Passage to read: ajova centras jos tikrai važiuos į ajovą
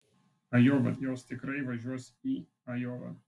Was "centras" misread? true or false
true